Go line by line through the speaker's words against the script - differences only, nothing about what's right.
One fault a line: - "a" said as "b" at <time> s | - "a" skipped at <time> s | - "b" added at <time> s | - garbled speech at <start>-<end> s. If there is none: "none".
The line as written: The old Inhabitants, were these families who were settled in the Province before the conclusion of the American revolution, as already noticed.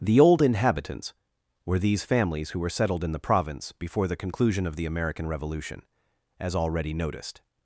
none